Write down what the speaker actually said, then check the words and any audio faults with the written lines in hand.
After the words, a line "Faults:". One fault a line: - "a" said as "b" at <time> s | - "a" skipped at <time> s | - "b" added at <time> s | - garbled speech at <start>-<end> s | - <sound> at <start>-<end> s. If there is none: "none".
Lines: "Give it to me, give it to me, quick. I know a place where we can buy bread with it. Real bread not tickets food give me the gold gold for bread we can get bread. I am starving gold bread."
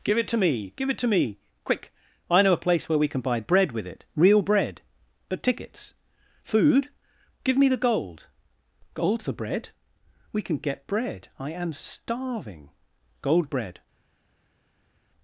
"Give it to me, give it to me, quick. I know a place where we can buy bread with it. Real bread but tickets food give me the gold gold for bread we can get bread. I am starving gold bread."
Faults:
- "not" said as "but" at 5.3 s